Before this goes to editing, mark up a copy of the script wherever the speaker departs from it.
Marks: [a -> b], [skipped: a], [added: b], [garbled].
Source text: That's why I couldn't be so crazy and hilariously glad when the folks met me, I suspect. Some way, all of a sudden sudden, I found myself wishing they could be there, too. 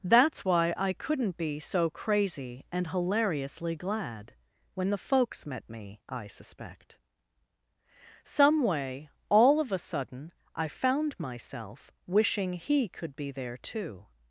That's why I couldn't be so crazy and hilariously glad when the folks met me, I suspect. Some way, all of a sudden [skipped: sudden,] I found myself wishing [they -> he] could be there, too.